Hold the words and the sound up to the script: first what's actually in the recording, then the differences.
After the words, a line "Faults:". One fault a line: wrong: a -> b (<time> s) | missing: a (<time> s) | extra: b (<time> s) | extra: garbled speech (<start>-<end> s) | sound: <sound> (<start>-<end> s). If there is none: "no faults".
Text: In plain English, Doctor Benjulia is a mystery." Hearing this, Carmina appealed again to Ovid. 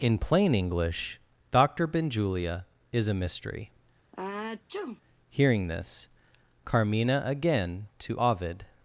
In plain English, Doctor Benjulia is a mystery." Hearing this, Carmina again to Ovid.
Faults:
sound: sneeze (4.1-5.0 s)
missing: appealed (7.2 s)